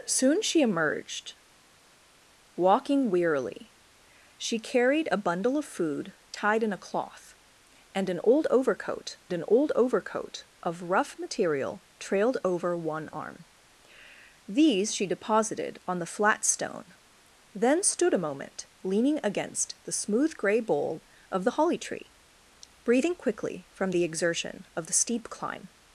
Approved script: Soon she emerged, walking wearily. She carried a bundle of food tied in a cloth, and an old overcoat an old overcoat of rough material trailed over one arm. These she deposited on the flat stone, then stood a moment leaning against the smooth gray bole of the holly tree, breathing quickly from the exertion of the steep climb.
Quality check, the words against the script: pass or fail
pass